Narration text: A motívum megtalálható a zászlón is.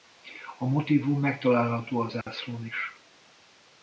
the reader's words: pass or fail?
pass